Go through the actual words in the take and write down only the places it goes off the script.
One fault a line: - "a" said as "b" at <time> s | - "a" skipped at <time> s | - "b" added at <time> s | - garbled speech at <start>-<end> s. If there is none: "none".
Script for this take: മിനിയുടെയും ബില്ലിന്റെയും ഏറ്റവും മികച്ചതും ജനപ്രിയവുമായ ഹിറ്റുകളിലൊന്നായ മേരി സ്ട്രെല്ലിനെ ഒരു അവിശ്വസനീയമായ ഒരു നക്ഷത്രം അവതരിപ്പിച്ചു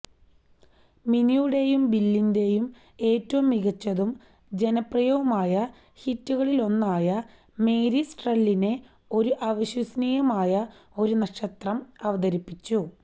none